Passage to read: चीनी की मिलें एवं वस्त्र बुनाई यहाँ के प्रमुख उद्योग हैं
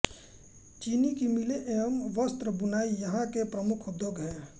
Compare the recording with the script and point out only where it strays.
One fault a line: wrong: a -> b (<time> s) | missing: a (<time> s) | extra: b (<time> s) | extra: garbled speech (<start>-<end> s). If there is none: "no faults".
no faults